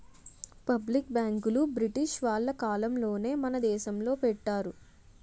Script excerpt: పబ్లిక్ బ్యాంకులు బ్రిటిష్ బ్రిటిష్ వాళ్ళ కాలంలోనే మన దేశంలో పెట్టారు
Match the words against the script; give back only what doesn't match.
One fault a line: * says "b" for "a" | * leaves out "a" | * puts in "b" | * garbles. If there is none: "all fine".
* leaves out "బ్రిటిష్"